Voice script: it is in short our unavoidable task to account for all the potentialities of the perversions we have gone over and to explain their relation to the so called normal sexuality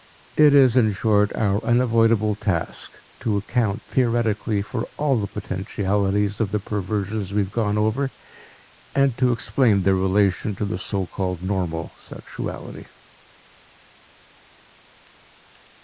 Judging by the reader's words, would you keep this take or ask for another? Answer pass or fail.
fail